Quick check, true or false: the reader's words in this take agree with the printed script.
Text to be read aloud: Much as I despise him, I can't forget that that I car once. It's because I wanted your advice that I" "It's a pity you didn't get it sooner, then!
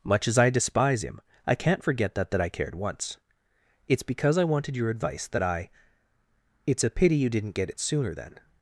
false